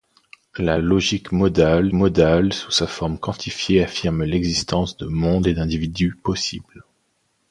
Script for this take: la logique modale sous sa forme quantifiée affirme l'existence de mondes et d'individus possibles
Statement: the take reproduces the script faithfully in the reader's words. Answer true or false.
false